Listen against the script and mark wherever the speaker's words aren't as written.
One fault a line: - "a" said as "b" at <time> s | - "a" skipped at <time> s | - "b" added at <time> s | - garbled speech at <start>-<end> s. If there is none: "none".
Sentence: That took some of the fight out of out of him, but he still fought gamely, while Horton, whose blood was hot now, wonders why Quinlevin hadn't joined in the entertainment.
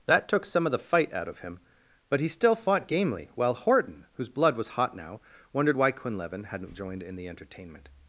- "out of" skipped at 1.4 s
- "wonders" said as "wondered" at 5.5 s